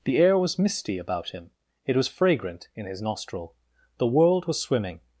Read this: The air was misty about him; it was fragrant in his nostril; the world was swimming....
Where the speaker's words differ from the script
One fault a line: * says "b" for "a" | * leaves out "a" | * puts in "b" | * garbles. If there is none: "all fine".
all fine